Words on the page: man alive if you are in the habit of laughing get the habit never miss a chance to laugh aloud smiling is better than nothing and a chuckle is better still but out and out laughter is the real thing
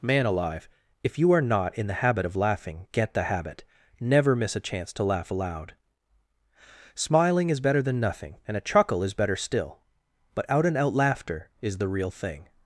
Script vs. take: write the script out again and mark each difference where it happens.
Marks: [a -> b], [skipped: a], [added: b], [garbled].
man alive if you are [added: not] in the habit of laughing get the habit never miss a chance to laugh aloud smiling is better than nothing and a chuckle is better still but out and out laughter is the real thing